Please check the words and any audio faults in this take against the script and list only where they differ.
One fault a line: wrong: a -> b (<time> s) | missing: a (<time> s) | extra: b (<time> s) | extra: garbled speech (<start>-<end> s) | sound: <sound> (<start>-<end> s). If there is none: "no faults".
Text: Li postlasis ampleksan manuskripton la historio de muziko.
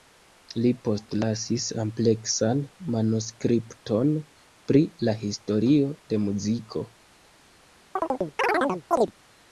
extra: pri (4.7 s)
sound: chirp (8.0-9.1 s)